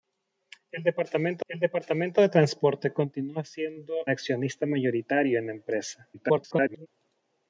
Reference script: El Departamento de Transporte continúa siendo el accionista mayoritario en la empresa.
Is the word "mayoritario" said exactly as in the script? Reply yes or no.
yes